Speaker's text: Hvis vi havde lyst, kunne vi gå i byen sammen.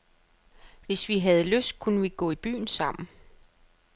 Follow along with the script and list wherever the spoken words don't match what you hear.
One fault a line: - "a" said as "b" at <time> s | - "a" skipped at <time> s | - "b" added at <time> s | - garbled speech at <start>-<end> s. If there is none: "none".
none